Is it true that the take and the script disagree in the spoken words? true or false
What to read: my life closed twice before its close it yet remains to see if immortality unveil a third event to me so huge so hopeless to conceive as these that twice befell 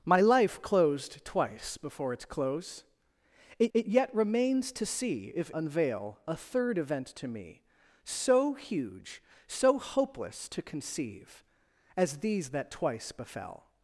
true